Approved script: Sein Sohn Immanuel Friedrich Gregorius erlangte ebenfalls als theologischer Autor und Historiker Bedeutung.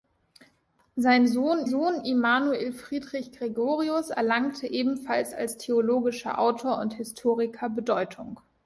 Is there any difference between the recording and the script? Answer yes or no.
yes